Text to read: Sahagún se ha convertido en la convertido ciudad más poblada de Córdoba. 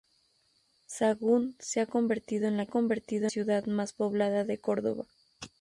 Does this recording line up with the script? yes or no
yes